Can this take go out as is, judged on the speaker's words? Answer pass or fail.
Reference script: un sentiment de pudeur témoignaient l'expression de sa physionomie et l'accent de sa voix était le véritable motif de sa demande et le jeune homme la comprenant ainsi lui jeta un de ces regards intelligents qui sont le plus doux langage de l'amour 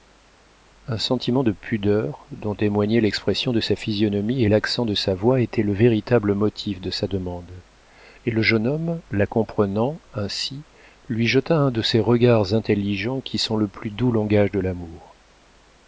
fail